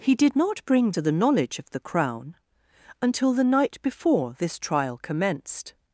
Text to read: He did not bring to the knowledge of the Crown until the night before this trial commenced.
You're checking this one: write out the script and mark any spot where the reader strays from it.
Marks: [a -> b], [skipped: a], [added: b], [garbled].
He did not bring to the knowledge of the Crown until the night before this trial commenced.